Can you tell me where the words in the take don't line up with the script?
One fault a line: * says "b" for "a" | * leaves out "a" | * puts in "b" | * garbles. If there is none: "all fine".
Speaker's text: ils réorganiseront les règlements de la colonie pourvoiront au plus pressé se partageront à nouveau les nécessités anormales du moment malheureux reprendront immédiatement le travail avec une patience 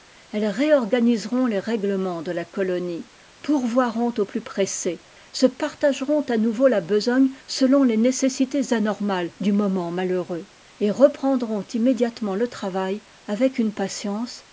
* says "elles" for "ils"
* puts in "la besogne selon"
* puts in "et"